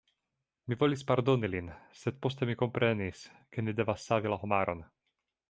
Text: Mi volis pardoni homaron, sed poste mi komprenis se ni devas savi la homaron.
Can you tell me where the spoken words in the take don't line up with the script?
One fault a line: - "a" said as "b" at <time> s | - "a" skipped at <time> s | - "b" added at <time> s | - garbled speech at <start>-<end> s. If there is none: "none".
- "homaron" said as "lin" at 1.6 s
- "se" said as "ke" at 3.5 s